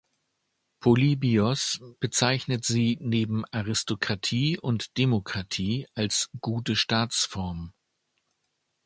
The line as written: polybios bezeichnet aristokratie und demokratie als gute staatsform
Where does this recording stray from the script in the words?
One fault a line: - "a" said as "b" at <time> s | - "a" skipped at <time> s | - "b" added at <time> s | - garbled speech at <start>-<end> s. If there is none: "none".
- "sie neben" added at 2.6 s